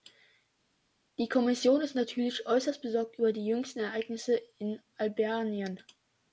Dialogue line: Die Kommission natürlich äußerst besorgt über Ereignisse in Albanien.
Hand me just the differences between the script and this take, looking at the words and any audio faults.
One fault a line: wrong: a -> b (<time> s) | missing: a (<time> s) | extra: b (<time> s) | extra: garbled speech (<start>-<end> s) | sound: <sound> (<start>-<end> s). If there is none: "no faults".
extra: ist (1.8 s)
extra: die jüngsten (3.3 s)